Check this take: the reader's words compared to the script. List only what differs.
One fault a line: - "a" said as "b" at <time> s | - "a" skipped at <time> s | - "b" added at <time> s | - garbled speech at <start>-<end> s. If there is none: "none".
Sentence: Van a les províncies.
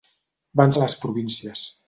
none